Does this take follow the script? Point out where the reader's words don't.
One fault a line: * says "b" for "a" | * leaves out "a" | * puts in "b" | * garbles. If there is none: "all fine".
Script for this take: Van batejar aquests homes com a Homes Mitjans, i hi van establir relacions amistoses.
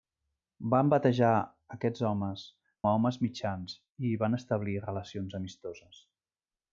* leaves out "com"